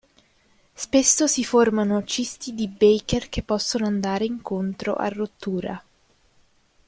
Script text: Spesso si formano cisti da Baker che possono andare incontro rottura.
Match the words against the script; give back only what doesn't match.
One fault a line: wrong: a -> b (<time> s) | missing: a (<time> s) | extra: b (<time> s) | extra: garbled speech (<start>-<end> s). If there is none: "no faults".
wrong: da -> di (2.5 s)
extra: a (5.0 s)